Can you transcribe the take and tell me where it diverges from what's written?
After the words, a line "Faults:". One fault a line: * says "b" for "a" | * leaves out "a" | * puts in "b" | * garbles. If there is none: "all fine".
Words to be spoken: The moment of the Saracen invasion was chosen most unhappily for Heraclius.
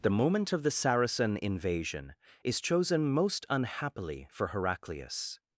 The moment of the Saracen invasion is chosen most unhappily for Heraclius.
Faults:
* says "is" for "was"